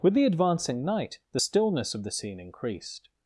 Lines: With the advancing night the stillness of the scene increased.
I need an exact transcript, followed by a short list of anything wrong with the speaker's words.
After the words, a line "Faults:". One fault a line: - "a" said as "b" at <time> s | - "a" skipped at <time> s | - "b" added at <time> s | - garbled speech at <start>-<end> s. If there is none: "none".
With the advancing night the stillness of the scene increased.
Faults:
none